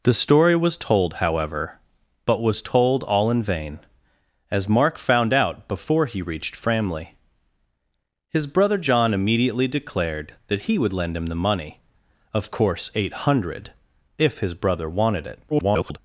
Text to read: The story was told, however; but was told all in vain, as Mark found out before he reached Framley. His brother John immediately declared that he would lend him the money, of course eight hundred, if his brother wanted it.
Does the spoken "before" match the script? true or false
true